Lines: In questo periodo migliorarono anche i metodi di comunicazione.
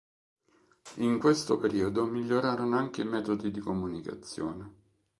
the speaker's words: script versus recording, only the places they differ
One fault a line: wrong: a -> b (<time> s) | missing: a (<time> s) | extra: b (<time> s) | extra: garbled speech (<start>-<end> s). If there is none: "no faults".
no faults